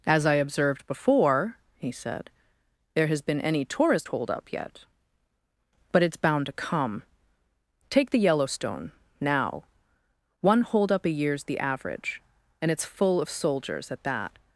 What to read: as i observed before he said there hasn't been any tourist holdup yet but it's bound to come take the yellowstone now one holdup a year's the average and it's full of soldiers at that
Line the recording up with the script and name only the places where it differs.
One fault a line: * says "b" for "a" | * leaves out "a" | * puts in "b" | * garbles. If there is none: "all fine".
* says "has" for "hasn't"